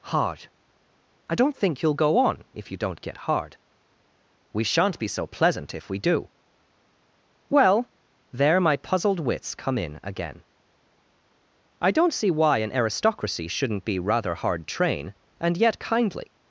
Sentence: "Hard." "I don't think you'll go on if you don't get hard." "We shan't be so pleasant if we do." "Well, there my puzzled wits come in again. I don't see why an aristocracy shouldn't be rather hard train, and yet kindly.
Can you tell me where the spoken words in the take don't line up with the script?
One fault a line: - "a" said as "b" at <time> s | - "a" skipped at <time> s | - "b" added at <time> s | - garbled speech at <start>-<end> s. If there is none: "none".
none